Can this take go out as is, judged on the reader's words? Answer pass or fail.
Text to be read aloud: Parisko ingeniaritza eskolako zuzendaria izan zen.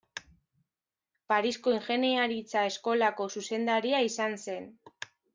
pass